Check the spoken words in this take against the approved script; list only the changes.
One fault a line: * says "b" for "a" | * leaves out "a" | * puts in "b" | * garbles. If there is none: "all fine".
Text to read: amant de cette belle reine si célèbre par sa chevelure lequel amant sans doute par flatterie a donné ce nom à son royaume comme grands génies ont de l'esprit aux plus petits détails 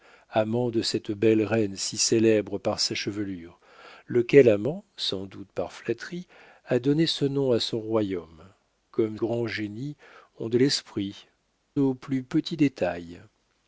all fine